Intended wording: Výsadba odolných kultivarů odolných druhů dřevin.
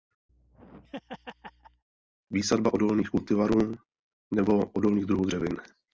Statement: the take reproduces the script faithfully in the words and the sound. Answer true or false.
false